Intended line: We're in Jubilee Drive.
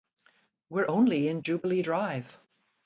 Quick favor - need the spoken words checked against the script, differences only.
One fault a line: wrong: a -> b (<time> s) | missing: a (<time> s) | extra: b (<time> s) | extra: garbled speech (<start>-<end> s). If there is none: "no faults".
extra: only (0.9 s)